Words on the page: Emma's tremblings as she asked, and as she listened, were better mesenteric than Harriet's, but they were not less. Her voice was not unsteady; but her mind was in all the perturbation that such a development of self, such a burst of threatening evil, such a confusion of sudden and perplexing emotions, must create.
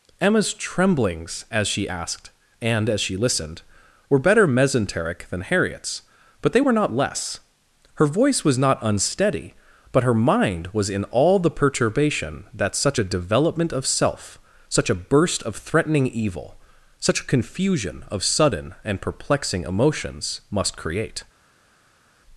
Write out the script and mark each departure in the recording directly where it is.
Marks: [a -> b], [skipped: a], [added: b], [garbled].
Emma's tremblings as she asked, and as she listened, were better mesenteric than Harriet's, but they were not less. Her voice was not unsteady; but her mind was in all the perturbation that such a development of self, such a burst of threatening evil, such a confusion of sudden and perplexing emotions, must create.